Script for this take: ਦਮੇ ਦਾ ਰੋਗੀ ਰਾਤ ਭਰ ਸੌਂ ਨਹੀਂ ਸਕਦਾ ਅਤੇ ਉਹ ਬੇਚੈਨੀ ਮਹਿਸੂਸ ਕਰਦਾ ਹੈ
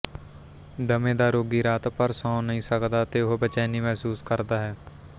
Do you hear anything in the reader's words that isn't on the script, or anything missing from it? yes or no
no